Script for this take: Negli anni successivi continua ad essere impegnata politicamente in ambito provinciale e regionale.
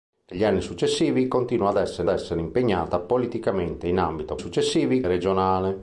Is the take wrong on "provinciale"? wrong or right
wrong